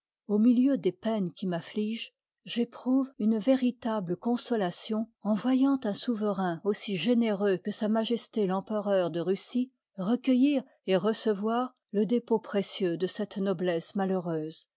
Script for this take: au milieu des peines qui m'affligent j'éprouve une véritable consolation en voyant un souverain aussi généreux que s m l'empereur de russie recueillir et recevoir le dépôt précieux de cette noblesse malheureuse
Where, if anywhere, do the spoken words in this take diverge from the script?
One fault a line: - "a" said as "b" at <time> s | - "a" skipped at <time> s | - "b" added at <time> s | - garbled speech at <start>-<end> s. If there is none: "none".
none